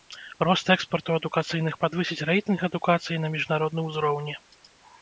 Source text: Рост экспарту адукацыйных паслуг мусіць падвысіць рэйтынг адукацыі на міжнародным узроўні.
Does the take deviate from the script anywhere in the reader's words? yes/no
yes